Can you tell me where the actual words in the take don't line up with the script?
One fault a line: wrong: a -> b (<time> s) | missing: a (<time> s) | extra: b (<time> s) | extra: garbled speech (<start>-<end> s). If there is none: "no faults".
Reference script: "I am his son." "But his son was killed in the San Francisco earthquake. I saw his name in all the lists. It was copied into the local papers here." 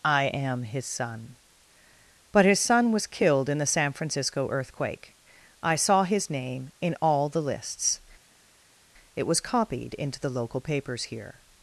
no faults